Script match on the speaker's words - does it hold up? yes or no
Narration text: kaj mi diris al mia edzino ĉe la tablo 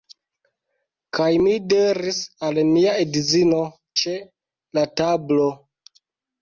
yes